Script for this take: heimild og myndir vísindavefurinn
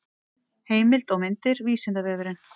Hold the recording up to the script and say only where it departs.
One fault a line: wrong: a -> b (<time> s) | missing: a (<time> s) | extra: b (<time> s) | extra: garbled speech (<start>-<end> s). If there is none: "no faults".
no faults